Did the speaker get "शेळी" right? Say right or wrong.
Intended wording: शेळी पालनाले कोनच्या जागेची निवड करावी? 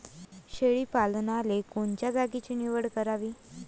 right